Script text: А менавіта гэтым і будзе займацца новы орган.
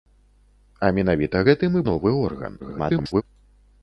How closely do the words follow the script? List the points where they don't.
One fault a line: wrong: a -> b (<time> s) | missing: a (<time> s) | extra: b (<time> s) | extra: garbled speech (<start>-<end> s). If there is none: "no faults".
missing: будзе займацца (1.8 s)
extra: garbled speech (2.6-3.2 s)